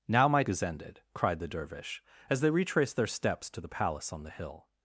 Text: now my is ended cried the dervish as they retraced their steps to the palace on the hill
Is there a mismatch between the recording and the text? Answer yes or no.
no